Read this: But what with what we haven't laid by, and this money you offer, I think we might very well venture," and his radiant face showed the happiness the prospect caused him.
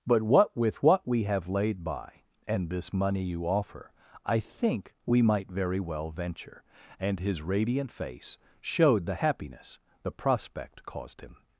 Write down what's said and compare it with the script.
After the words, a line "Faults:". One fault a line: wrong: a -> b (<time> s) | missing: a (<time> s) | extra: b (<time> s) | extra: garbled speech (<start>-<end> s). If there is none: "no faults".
But what with what we have laid by, and this money you offer, I think we might very well venture," and his radiant face showed the happiness the prospect caused him.
Faults:
wrong: haven't -> have (1.2 s)